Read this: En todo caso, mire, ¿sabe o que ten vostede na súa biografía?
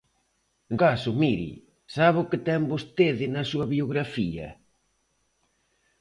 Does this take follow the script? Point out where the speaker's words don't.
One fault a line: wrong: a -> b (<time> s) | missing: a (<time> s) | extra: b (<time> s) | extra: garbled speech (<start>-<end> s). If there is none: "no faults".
missing: todo (0.8 s)